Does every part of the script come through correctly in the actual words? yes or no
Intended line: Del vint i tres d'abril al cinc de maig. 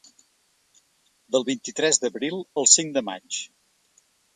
yes